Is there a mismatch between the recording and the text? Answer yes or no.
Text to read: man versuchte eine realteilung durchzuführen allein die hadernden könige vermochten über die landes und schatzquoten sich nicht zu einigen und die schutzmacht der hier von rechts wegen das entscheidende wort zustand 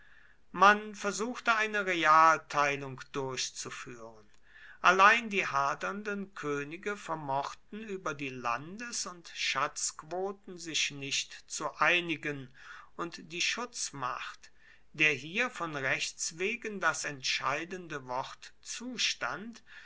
no